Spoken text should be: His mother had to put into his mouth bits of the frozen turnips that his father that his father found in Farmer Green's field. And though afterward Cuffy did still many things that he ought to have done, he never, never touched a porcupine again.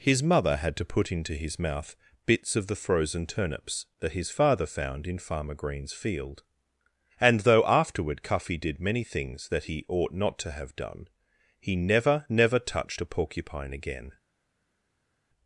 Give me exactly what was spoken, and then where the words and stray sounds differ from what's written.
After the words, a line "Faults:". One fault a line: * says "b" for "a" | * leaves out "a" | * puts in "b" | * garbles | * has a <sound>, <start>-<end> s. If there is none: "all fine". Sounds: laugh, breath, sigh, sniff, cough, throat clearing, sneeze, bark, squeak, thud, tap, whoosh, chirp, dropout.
His mother had to put into his mouth bits of the frozen turnips that his father found in Farmer Green's field. And though afterward Cuffy did many things that he ought not to have done, he never, never touched a porcupine again.
Faults:
* leaves out "that his father"
* leaves out "still"
* puts in "not"